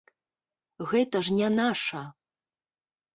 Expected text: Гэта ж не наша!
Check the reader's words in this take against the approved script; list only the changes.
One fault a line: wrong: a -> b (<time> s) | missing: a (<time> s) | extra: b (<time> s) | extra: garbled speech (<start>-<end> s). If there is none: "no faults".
no faults